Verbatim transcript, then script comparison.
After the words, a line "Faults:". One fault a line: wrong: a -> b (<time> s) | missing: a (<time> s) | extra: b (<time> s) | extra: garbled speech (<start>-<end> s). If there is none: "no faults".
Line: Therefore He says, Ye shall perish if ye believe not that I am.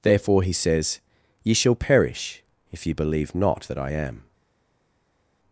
Therefore He says, Ye shall perish if ye believe not that I am.
Faults:
no faults